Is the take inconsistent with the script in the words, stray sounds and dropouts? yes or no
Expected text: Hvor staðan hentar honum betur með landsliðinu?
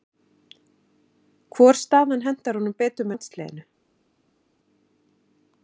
yes